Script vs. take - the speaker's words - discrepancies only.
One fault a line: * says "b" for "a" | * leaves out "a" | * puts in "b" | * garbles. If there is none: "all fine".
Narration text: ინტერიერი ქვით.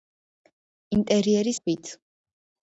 all fine